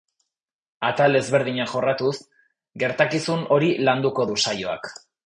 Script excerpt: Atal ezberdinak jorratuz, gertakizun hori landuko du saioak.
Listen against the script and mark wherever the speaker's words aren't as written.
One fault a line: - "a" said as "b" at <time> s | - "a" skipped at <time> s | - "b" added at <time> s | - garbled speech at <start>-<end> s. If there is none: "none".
none